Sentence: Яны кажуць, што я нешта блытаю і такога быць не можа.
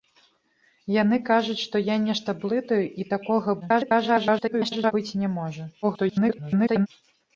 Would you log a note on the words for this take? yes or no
yes